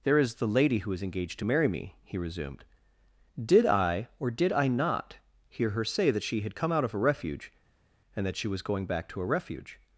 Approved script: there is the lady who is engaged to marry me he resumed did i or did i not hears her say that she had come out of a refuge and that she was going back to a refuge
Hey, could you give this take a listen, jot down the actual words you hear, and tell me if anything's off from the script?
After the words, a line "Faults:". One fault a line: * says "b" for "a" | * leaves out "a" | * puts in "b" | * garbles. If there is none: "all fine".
there is the lady who is engaged to marry me he resumed did i or did i not hear her say that she had come out of a refuge and that she was going back to a refuge
Faults:
* says "hear" for "hears"